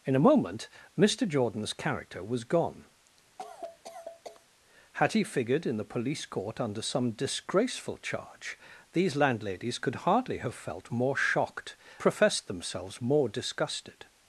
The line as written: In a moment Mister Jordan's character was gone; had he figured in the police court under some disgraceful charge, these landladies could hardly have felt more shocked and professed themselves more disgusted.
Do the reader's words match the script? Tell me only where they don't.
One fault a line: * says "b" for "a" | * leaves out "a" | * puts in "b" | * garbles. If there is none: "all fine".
* leaves out "and"